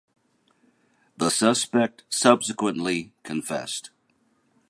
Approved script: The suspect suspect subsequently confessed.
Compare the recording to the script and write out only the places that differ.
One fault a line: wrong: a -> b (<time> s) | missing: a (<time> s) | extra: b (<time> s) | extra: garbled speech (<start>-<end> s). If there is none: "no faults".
missing: suspect (2.0 s)